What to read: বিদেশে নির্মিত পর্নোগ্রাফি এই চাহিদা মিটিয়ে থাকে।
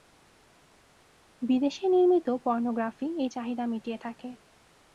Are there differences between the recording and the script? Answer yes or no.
no